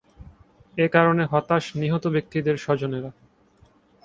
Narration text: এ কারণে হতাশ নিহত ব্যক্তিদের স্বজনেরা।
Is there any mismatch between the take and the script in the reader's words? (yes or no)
no